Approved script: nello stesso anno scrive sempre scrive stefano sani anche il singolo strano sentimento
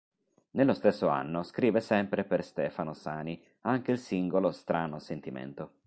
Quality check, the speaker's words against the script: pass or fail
fail